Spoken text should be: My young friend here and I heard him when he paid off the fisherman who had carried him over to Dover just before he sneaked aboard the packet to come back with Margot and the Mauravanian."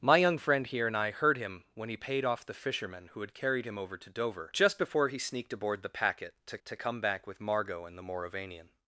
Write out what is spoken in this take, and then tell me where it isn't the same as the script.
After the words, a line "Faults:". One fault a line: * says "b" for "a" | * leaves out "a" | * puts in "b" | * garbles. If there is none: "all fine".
My young friend here and I heard him when he paid off the fisherman who had carried him over to Dover just before he sneaked aboard the packet to to come back with Margot and the Mauravanian."
Faults:
* puts in "to"